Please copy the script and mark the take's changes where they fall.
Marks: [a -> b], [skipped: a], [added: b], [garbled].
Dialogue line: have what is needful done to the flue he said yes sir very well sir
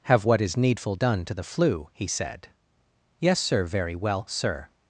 have what is needful done to the flue he said yes sir very well sir